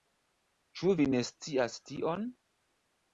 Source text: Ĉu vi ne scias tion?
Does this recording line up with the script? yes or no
yes